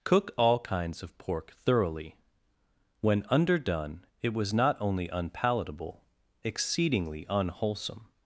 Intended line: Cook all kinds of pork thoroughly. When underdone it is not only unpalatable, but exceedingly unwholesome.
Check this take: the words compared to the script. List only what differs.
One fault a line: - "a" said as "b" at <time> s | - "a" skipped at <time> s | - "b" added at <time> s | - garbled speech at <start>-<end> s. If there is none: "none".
- "is" said as "was" at 4.3 s
- "but" skipped at 6.0 s